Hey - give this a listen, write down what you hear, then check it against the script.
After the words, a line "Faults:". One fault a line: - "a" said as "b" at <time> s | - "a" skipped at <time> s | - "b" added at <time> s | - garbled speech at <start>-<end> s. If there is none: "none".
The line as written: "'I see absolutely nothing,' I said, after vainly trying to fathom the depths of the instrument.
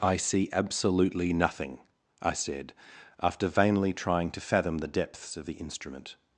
"'I see absolutely nothing,' I said, after vainly trying to fathom the depths of the instrument.
Faults:
none